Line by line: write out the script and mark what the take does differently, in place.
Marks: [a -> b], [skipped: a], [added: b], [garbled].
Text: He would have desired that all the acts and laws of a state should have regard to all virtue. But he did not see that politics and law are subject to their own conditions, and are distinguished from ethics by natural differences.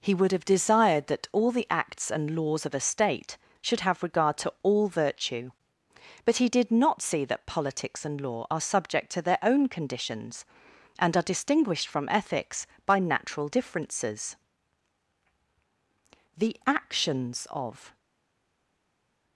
He would have desired that all the acts and laws of a state should have regard to all virtue. But he did not see that politics and law are subject to their own conditions, and are distinguished from ethics by natural differences. [added: The actions of]